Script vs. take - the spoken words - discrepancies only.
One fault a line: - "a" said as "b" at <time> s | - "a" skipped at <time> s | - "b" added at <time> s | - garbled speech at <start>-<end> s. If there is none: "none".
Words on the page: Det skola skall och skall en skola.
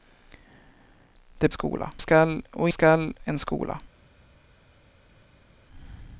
none